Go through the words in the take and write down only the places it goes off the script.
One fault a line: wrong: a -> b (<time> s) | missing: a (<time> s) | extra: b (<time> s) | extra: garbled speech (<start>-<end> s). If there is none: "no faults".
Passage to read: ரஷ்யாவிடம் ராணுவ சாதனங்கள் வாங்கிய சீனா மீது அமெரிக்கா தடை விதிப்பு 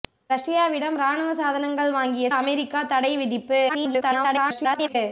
missing: சீனா மீது (2.3 s)
extra: garbled speech (3.7-5.0 s)